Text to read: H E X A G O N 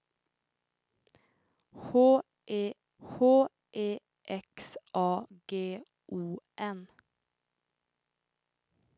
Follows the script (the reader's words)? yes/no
no